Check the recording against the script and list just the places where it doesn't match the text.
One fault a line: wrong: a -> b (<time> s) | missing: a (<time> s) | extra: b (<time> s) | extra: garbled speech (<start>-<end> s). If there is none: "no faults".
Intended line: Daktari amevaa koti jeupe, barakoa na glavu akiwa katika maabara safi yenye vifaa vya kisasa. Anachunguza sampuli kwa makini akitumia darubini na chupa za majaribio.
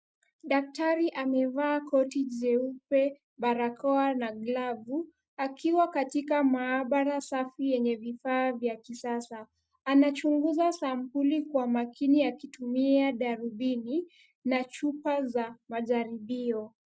no faults